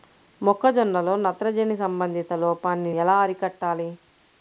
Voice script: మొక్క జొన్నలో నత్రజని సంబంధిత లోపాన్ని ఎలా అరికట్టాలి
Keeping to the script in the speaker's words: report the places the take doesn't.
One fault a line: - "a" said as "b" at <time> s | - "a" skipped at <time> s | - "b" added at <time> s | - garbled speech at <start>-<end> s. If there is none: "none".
none